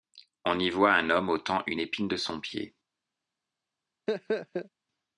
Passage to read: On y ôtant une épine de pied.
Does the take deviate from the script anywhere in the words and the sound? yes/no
yes